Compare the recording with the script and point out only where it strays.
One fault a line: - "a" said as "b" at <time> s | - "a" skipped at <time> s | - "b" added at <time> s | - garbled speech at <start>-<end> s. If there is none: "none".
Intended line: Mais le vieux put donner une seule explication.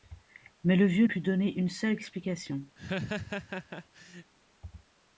none